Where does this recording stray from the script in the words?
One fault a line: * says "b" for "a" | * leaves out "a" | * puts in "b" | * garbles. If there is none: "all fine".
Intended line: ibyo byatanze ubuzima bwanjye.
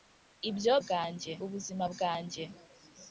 * says "bwanjye" for "byatanze"